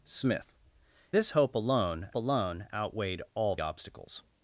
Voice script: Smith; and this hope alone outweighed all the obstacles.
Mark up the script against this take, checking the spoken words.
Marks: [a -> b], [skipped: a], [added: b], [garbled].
Smith; [skipped: and] this hope alone [added: alone] outweighed all [skipped: the] obstacles.